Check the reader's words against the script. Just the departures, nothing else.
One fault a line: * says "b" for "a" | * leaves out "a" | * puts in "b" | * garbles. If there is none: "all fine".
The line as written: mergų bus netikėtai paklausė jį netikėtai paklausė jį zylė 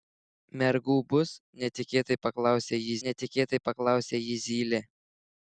all fine